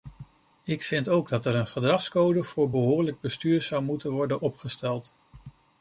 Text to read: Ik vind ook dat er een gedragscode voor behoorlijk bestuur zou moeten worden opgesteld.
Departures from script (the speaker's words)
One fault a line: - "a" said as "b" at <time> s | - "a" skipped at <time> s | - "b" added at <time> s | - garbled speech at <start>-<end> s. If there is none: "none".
none